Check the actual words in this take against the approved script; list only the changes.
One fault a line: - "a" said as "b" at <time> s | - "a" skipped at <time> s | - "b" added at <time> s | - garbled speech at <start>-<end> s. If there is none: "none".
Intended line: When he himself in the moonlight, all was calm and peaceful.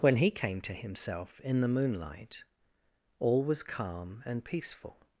- "came to" added at 0.3 s